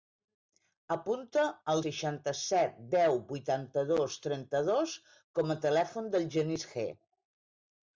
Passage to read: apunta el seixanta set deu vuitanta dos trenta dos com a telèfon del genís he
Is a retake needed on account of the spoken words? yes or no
no